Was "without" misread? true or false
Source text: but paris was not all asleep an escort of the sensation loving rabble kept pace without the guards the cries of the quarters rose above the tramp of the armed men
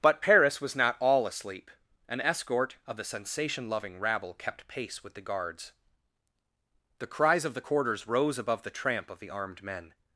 true